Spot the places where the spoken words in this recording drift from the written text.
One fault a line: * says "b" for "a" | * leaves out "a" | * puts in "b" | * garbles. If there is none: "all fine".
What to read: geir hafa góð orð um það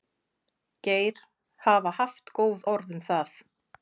* puts in "haft"